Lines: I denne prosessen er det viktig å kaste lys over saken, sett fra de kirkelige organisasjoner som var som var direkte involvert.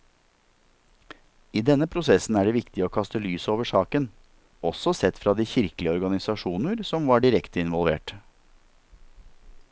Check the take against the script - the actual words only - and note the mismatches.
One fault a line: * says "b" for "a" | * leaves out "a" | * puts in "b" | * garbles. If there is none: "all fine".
* puts in "også"
* leaves out "som var"